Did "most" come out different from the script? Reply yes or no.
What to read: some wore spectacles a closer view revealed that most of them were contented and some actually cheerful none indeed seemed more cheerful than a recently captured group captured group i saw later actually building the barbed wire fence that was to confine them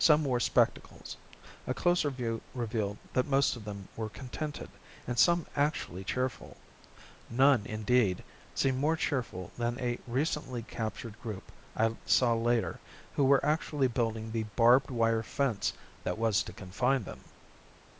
no